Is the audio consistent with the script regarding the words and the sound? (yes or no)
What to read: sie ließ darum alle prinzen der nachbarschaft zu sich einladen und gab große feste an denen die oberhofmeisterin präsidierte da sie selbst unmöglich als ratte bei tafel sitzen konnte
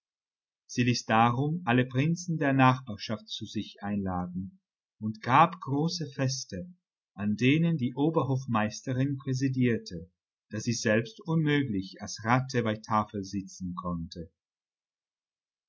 yes